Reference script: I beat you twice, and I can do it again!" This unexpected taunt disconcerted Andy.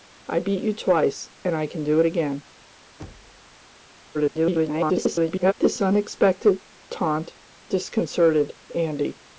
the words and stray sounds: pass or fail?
fail